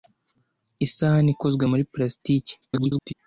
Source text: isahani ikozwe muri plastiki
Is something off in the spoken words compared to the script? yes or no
yes